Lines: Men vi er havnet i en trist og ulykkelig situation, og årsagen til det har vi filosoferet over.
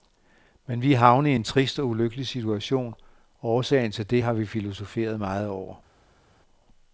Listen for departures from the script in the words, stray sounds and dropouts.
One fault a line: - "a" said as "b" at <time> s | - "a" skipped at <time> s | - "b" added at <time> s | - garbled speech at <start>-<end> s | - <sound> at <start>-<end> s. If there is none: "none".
- "meget" added at 5.2 s